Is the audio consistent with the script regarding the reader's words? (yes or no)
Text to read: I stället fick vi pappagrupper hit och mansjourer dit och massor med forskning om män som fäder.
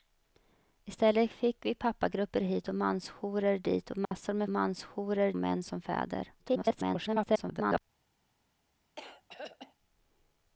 no